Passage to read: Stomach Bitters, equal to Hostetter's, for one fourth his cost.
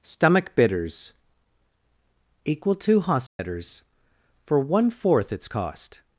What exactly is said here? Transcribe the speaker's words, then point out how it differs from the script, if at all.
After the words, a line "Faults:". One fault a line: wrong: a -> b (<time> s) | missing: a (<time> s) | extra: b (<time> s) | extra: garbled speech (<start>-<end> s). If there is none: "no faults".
Stomach Bitters, equal to Hostetter's, for one fourth its cost.
Faults:
wrong: his -> its (5.3 s)